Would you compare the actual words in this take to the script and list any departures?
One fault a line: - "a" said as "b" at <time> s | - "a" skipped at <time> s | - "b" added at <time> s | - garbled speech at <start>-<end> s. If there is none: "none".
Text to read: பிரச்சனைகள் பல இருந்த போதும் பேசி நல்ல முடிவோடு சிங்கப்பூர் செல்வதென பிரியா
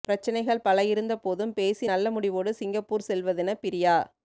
none